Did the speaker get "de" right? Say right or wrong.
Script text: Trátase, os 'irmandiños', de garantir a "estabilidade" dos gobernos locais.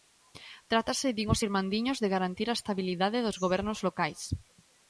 right